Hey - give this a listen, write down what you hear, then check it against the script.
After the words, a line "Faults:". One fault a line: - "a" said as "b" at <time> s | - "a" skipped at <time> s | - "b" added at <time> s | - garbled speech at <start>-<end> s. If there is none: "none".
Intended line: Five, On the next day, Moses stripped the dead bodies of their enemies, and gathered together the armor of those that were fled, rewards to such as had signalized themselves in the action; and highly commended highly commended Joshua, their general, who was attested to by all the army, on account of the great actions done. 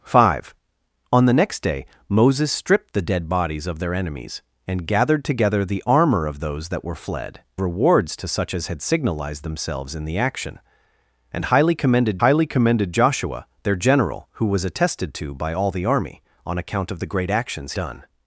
Five, On the next day, Moses stripped the dead bodies of their enemies, and gathered together the armor of those that were fled, rewards to such as had signalized themselves in the action; and highly commended highly commended Joshua, their general, who was attested to by all the army, on account of the great actions done.
Faults:
none